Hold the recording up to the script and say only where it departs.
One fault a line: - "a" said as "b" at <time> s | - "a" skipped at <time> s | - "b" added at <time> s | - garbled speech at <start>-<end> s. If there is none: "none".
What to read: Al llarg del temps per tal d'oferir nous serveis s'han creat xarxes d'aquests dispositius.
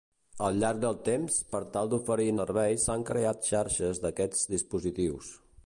- "nous" skipped at 2.3 s